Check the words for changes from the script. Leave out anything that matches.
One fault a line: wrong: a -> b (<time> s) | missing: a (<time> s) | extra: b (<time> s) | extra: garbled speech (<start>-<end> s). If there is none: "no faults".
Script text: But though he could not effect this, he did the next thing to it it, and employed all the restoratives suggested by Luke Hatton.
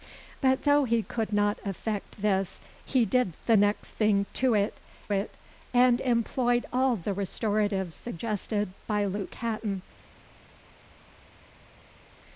no faults